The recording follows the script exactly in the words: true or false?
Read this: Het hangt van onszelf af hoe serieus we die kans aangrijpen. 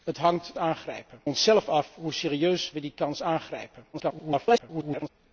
false